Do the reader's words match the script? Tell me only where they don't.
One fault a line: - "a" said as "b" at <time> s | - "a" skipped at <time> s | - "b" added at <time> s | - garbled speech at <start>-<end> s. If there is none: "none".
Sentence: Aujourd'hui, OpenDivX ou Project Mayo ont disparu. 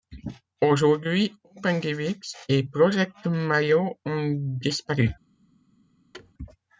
- "ou" said as "et" at 2.5 s